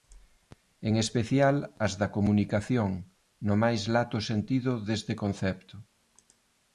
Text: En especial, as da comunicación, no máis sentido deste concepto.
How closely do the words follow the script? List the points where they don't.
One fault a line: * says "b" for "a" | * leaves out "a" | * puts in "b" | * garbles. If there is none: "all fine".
* puts in "lato"